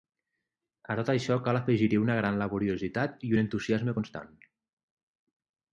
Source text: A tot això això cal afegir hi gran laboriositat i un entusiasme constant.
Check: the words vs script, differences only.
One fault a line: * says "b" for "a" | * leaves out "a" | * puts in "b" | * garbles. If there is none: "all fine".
* leaves out "això"
* puts in "una"